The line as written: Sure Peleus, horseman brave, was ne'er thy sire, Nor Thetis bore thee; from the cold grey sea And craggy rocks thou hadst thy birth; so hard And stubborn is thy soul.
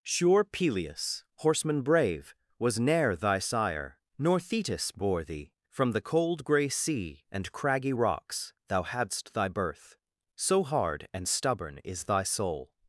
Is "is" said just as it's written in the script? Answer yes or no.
yes